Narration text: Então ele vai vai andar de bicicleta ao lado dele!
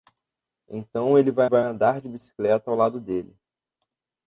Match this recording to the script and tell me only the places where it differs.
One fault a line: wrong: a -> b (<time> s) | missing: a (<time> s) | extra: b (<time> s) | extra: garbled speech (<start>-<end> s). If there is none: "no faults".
no faults